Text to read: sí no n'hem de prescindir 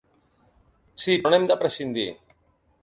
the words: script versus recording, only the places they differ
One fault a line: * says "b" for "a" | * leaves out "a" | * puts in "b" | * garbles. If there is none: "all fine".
all fine